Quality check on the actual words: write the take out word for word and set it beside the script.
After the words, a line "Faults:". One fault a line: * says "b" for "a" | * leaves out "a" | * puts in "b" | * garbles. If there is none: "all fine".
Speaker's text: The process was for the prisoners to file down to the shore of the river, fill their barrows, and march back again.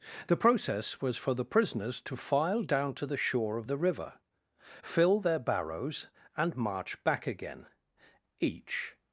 The process was for the prisoners to file down to the shore of the river, fill their barrows, and march back again. Each
Faults:
* puts in "Each"